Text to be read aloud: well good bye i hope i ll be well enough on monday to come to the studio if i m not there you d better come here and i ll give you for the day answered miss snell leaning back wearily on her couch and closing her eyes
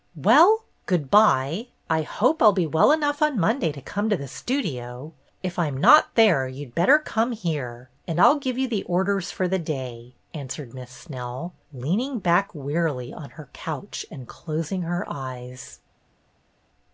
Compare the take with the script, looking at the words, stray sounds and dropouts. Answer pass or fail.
fail